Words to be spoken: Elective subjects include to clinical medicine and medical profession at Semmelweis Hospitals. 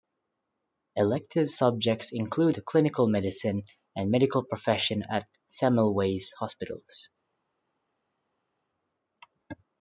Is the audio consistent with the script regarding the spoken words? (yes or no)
yes